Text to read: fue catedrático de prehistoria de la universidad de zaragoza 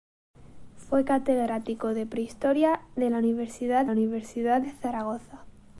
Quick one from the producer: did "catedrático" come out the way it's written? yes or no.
yes